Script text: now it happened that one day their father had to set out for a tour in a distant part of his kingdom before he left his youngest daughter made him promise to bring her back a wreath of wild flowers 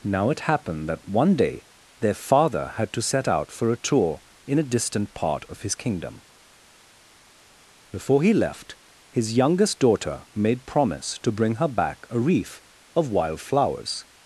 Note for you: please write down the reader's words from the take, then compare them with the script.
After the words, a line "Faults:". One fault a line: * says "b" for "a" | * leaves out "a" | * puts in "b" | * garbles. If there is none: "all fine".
now it happened that one day their father had to set out for a tour in a distant part of his kingdom before he left his youngest daughter made promise to bring her back a wreath of wild flowers
Faults:
* leaves out "him"